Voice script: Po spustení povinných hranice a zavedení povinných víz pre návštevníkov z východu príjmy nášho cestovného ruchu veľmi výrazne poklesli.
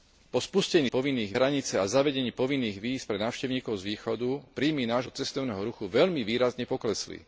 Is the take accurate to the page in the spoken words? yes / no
yes